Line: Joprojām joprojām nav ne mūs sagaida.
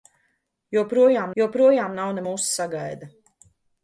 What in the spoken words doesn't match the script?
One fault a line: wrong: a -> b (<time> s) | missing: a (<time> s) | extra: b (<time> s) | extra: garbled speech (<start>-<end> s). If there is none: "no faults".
no faults